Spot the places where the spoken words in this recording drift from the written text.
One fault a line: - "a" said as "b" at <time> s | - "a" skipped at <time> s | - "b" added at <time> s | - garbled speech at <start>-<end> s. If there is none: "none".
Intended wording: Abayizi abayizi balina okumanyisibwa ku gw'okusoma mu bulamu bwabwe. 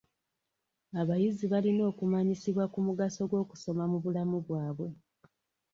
- "abayizi" skipped at 1.4 s
- "mugaso" added at 2.9 s